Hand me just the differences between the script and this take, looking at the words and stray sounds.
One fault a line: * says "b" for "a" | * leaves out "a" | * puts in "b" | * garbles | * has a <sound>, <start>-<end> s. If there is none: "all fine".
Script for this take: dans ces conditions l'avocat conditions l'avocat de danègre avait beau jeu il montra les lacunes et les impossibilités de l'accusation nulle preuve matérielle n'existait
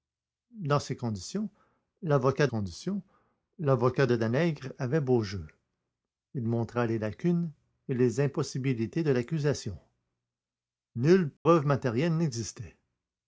* has a dropout, 11.4-11.5 s